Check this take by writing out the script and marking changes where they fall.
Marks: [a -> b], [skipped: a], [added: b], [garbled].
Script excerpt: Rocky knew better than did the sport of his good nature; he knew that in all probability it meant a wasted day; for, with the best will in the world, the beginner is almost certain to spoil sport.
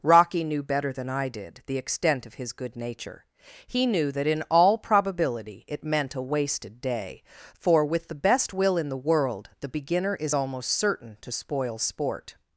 Rocky knew better than [added: I] did the [sport -> extent] of his good nature; he knew that in all probability it meant a wasted day; for, with the best will in the world, the beginner is almost certain to spoil sport.